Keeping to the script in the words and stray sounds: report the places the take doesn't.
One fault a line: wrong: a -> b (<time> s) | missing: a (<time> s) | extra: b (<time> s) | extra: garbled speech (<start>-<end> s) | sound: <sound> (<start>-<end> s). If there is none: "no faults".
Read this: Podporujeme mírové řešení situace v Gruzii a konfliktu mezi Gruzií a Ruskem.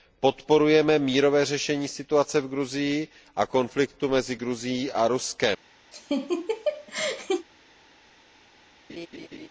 sound: laugh (5.9-7.5 s)
sound: laugh (8.9-9.5 s)